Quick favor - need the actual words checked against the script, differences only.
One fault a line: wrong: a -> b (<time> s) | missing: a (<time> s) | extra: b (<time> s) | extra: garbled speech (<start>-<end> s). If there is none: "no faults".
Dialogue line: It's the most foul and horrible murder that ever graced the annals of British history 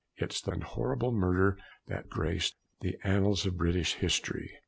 missing: most foul (0.5 s)
missing: ever (2.1 s)